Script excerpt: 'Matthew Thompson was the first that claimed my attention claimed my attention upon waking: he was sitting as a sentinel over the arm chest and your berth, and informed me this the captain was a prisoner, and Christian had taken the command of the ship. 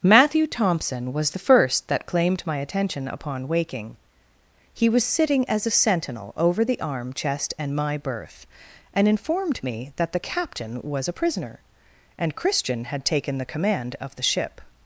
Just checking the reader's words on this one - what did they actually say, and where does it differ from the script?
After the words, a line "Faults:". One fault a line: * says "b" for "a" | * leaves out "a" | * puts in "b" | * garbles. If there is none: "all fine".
'Matthew Thompson was the first that claimed my attention upon waking: he was sitting as a sentinel over the arm chest and my berth, and informed me that the captain was a prisoner, and Christian had taken the command of the ship.
Faults:
* leaves out "claimed my attention"
* says "my" for "your"
* says "that" for "this"